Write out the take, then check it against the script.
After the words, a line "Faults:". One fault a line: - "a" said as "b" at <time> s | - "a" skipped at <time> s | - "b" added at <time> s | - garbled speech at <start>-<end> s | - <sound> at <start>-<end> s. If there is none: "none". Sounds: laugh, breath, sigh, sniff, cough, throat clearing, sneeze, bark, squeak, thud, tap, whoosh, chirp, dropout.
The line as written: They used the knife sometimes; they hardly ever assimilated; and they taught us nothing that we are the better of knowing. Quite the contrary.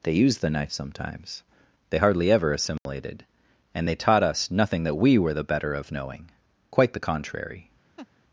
They used the knife sometimes; they hardly ever assimilated; and they taught us nothing that we were the better of knowing. Quite the contrary.
Faults:
- dropout at 2.8-2.9 s
- "are" said as "were" at 5.2 s
- laugh at 8.0-8.1 s